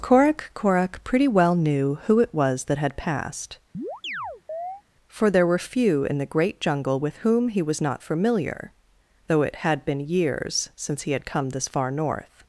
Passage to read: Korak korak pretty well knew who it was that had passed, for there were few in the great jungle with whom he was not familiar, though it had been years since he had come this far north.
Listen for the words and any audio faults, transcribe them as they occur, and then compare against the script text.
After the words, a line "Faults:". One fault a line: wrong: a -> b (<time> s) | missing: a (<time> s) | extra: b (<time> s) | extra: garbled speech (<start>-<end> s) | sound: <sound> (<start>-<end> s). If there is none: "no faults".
Korak korak pretty well knew who it was that had passed, for there were few in the great jungle with whom he was not familiar, though it had been years since he had come this far north.
Faults:
sound: chirp (3.7-4.8 s)